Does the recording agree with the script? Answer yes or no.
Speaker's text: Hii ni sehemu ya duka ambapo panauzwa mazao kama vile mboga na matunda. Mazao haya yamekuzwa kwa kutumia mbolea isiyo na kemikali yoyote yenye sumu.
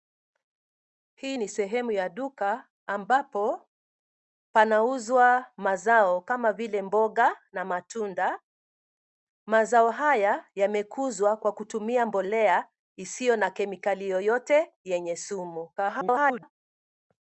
no